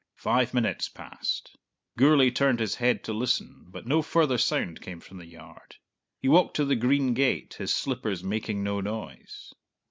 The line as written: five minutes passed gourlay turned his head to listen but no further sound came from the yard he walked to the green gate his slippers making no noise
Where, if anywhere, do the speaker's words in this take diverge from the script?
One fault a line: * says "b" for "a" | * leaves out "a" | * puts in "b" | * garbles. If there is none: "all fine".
all fine